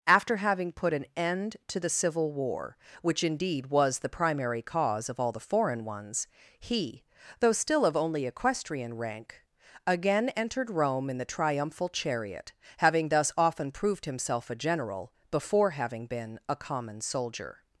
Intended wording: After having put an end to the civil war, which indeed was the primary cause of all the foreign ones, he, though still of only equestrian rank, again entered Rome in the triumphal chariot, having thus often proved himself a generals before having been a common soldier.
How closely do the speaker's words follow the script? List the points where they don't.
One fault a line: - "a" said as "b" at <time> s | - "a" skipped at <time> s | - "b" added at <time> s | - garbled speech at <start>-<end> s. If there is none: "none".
- "generals" said as "general" at 14.6 s